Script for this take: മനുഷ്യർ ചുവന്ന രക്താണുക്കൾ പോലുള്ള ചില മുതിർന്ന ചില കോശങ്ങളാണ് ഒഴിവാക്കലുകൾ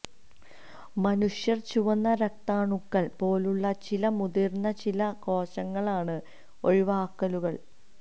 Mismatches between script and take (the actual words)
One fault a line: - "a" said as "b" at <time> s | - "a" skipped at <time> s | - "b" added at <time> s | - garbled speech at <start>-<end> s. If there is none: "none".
none